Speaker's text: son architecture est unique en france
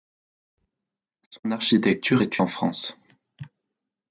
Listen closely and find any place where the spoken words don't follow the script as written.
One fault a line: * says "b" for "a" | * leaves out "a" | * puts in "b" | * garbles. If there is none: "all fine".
* leaves out "unique"